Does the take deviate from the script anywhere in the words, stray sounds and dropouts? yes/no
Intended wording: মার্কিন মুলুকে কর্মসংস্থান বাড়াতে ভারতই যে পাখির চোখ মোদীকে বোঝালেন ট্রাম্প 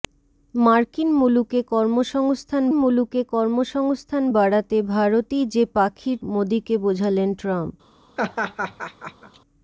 yes